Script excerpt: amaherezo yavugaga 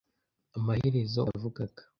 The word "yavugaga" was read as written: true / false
true